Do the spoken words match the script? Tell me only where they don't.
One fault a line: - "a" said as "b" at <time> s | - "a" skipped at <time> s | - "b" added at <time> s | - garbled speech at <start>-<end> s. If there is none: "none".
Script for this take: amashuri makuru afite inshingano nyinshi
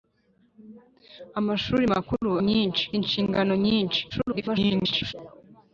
- "afite" said as "nyinshi" at 2.5 s
- garbled speech at 4.1-5.1 s